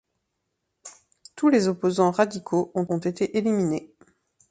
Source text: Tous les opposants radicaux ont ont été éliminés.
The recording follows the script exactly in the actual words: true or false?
true